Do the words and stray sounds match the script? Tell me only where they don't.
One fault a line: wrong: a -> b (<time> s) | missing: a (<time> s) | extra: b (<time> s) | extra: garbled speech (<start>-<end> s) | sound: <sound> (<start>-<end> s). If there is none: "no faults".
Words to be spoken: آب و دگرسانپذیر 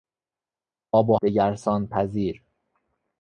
no faults